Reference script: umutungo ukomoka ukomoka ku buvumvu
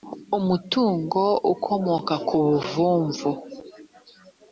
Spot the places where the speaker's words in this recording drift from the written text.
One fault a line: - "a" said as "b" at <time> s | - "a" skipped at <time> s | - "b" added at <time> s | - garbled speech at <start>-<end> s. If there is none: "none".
- "ukomoka" skipped at 2.1 s